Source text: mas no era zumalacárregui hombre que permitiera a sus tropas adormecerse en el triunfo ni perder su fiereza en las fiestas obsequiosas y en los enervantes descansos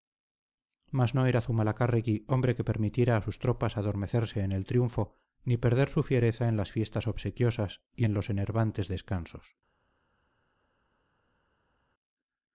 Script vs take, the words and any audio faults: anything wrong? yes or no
no